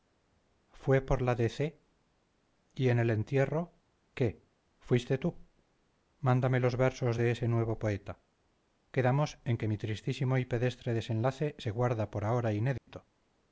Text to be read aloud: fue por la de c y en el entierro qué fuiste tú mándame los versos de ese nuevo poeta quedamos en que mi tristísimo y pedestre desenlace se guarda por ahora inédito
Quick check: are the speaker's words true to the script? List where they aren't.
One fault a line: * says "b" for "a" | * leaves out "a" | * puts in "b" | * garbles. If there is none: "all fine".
all fine